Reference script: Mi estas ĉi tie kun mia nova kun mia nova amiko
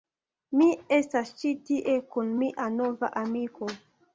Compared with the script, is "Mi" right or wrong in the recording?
right